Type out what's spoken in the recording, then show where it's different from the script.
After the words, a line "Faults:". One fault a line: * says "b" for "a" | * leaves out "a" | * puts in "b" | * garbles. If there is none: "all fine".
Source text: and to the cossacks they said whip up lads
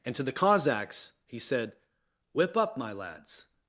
and to the cossacks he said whip up my lads
Faults:
* says "he" for "they"
* puts in "my"